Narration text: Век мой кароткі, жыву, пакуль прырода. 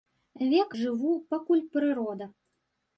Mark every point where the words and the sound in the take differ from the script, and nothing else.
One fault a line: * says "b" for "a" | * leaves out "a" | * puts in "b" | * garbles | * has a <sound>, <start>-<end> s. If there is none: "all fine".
* leaves out "мой кароткі"